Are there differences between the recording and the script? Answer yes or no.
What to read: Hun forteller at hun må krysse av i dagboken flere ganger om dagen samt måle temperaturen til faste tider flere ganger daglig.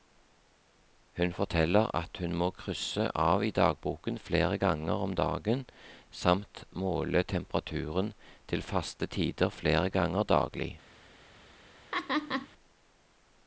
no